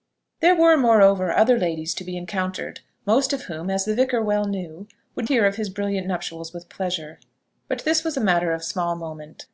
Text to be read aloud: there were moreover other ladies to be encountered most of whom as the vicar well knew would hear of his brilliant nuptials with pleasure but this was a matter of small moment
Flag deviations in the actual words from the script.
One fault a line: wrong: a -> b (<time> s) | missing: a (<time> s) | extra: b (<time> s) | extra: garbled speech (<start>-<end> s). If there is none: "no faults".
no faults